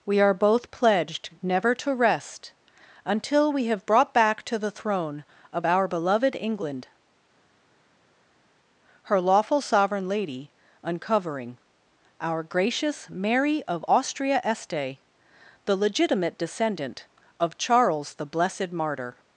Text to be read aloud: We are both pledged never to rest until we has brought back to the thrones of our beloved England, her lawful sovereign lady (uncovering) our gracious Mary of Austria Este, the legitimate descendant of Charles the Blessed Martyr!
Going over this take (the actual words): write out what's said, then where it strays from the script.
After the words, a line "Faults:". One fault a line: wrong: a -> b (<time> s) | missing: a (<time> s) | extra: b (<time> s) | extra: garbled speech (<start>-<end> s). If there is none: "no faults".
We are both pledged never to rest until we have brought back to the throne of our beloved England, her lawful sovereign lady (uncovering) our gracious Mary of Austria Este, the legitimate descendant of Charles the Blessed Martyr!
Faults:
wrong: has -> have (3.6 s)
wrong: thrones -> throne (4.7 s)